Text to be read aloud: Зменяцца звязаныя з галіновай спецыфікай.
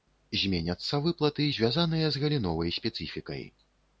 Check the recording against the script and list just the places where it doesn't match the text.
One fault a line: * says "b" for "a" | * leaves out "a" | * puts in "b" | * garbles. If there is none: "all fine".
* puts in "выплаты"